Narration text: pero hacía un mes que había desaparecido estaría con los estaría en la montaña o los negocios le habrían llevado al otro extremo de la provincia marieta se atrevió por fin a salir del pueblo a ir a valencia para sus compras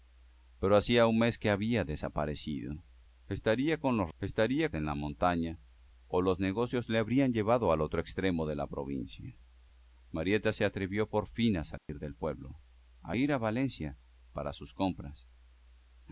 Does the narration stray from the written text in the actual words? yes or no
no